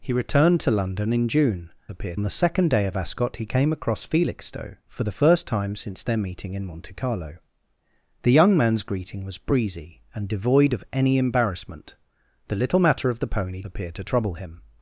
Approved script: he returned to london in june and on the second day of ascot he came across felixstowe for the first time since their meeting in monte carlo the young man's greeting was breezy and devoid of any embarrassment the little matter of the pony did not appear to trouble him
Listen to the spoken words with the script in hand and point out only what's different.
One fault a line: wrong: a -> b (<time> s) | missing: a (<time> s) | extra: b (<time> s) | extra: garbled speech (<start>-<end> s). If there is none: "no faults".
wrong: and -> appear (1.9 s)
missing: did not (13.6 s)